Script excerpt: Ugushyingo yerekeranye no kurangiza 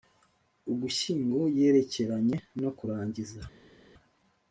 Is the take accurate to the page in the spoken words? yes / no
yes